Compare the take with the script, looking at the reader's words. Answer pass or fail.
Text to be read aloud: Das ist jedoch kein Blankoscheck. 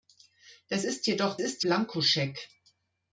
fail